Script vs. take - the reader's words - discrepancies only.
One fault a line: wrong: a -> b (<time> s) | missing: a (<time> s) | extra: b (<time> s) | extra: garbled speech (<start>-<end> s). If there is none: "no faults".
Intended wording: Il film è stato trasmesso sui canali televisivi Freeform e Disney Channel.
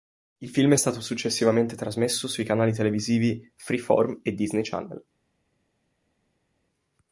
extra: successivamente (1.0 s)